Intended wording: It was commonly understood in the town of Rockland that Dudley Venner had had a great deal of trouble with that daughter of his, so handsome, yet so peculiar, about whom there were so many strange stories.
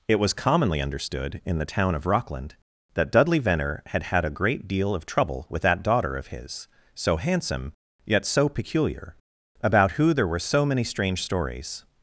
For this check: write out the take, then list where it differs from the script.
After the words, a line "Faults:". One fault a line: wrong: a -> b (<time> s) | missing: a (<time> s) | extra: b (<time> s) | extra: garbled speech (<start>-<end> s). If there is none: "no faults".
It was commonly understood in the town of Rockland that Dudley Venner had had a great deal of trouble with that daughter of his, so handsome, yet so peculiar, about who there were so many strange stories.
Faults:
wrong: whom -> who (9.9 s)